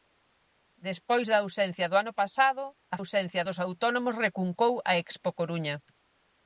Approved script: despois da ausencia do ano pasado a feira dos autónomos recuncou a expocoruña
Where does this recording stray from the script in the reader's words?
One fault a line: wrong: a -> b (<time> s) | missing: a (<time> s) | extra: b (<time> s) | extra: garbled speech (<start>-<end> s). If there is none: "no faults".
wrong: feira -> ausencia (3.0 s)